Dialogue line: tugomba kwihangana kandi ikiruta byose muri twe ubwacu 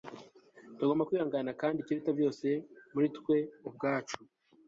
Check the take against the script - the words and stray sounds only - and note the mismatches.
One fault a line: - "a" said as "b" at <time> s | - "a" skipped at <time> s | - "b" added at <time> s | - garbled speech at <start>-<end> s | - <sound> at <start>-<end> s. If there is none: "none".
none